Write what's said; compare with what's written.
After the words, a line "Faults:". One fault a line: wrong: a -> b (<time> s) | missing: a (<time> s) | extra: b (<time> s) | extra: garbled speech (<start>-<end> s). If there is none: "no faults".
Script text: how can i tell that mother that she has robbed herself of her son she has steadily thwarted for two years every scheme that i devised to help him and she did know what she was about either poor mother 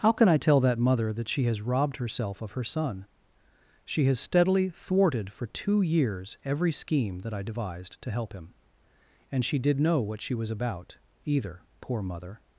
how can i tell that mother that she has robbed herself of her son she has steadily thwarted for two years every scheme that i devised to help him and she did know what she was about either poor mother
Faults:
no faults